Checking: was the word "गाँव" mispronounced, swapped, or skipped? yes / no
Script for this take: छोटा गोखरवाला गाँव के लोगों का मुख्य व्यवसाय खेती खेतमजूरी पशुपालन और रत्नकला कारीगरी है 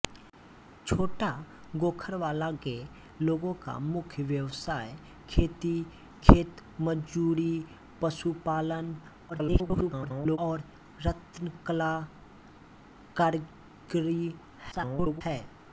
yes